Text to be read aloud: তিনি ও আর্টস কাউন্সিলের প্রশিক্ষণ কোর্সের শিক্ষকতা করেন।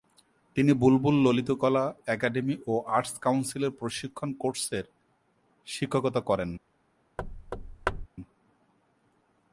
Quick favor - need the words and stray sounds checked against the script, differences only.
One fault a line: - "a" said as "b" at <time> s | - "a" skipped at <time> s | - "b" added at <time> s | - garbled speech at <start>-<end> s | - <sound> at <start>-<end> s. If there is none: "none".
- "বুলবুল ললিতকলা একাডেমি" added at 0.7 s
- thud at 7.2-8.1 s